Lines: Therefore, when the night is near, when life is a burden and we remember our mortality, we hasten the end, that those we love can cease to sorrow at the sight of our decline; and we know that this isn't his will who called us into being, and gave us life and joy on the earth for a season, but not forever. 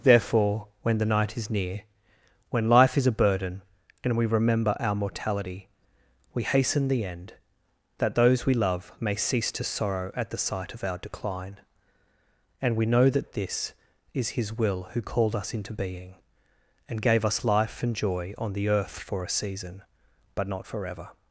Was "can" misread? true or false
true